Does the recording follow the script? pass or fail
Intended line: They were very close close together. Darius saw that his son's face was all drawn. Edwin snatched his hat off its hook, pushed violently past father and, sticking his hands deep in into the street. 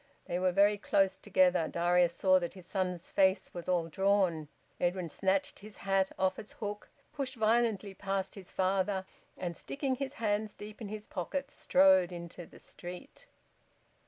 fail